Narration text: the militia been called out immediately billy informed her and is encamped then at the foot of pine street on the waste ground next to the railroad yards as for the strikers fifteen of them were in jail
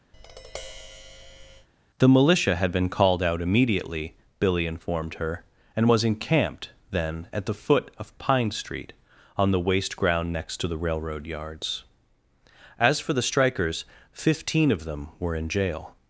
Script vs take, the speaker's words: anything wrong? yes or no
yes